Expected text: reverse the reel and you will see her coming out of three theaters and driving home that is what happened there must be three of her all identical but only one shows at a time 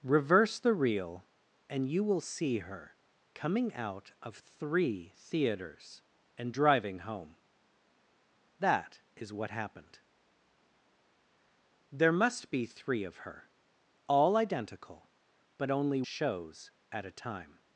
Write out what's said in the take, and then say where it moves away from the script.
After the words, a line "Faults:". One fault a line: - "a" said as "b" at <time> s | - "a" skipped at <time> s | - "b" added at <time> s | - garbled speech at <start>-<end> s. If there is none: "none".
reverse the reel and you will see her coming out of three theaters and driving home that is what happened there must be three of her all identical but only shows at a time
Faults:
- "one" skipped at 16.0 s